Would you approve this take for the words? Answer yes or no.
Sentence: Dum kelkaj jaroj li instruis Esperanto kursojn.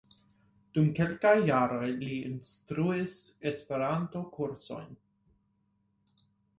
yes